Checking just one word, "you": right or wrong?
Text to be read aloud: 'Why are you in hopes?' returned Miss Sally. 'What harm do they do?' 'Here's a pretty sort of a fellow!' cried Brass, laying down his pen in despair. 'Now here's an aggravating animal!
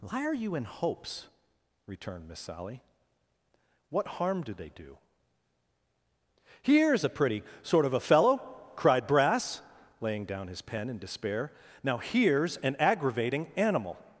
right